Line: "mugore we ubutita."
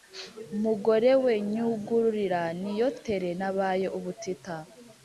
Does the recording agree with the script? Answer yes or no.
no